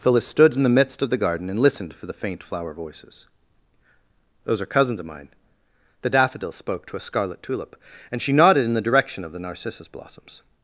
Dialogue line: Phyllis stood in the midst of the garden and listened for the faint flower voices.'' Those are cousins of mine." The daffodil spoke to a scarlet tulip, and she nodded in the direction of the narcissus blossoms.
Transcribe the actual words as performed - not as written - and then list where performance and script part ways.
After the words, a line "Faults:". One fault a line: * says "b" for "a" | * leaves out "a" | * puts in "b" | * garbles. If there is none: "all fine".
Phyllis stood in the midst of the garden and listened for the faint flower voices.'' Those are cousins of mine." The daffodil spoke to a scarlet tulip, and she nodded in the direction of the narcissus blossoms.
Faults:
all fine